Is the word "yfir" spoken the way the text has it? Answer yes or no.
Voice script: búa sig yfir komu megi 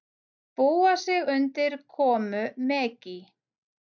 no